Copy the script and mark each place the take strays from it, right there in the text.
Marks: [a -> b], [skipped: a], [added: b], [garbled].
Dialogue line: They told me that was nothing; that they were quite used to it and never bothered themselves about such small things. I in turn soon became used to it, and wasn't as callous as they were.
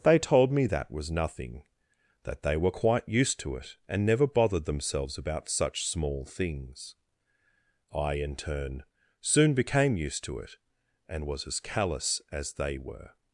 They told me that was nothing; that they were quite used to it and never bothered themselves about such small things. I in turn soon became used to it, and [wasn't -> was] as callous as they were.